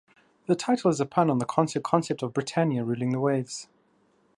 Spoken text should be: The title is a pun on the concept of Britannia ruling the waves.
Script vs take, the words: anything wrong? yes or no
yes